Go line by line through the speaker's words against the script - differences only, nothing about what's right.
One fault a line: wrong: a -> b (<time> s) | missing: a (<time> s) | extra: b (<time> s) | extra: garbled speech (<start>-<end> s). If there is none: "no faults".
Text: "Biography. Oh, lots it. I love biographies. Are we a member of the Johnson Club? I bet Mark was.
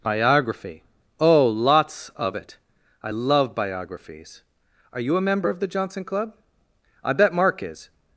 extra: of (2.1 s)
wrong: we -> you (5.0 s)
wrong: was -> is (7.6 s)